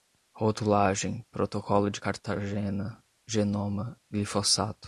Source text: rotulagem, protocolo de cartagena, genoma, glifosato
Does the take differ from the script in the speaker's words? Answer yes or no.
no